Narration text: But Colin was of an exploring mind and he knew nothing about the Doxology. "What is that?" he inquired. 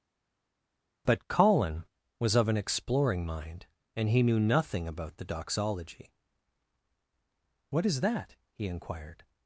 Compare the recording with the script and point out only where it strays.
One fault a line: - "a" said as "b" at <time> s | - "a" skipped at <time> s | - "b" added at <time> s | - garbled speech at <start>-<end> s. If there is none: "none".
none